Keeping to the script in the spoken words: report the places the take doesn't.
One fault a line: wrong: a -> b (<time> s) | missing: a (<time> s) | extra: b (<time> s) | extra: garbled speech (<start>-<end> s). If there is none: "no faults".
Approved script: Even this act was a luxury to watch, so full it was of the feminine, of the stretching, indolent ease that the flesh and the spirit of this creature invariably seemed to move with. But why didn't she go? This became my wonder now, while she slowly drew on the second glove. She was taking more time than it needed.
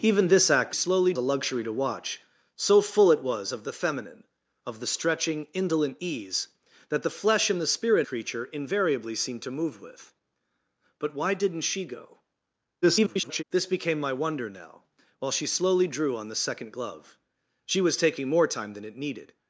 wrong: was -> slowly (0.7 s)
missing: of this (8.1 s)
extra: garbled speech (12.8-13.4 s)